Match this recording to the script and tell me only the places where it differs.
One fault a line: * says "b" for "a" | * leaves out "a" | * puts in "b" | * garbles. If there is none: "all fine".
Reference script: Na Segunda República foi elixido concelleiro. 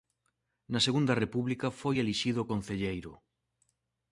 all fine